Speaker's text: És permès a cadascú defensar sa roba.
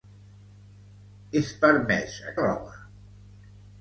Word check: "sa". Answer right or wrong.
wrong